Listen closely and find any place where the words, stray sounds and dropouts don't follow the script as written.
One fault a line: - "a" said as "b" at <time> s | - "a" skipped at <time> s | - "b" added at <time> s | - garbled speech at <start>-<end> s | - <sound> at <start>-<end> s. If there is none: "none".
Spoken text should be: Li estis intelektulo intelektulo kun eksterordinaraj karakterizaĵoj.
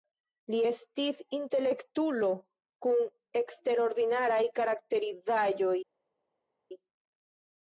- "intelektulo" skipped at 2.3 s